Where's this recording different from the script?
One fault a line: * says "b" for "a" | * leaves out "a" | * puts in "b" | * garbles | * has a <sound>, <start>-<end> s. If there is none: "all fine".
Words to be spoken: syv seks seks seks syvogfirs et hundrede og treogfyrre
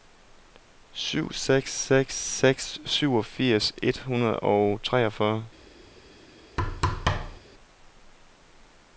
* has a thud, 6.6-7.4 s